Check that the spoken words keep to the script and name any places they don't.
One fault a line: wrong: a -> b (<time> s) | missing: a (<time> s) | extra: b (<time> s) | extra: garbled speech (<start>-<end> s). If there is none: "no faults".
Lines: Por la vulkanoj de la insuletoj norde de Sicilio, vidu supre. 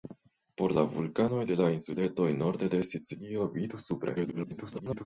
extra: garbled speech (4.2-5.1 s)